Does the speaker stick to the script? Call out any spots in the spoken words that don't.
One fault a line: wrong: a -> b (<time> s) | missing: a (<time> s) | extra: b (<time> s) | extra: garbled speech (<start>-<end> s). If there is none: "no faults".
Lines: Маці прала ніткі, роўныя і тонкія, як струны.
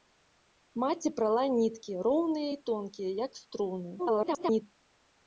extra: garbled speech (4.0-4.6 s)